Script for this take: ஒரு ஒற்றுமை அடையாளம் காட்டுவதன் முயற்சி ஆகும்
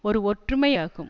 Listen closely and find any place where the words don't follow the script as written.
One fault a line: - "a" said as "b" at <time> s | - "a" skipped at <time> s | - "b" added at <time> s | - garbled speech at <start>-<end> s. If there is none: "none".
- "அடையாளம் காட்டுவதன் முயற்சி" skipped at 0.7 s